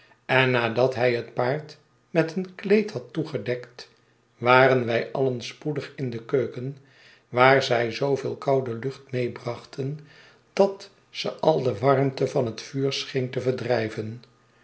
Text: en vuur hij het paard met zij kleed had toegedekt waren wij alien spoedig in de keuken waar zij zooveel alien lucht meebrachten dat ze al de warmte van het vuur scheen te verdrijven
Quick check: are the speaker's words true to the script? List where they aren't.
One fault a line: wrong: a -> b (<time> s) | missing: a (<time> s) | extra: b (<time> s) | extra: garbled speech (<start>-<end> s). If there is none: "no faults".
wrong: vuur -> nadat (0.5 s)
wrong: zij -> een (2.4 s)
wrong: alien -> koude (8.3 s)